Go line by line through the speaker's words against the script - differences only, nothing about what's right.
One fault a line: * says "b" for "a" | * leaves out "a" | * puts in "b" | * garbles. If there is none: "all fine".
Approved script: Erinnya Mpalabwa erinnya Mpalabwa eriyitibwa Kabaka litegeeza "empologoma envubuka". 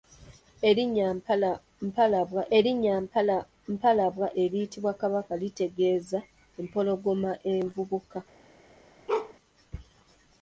all fine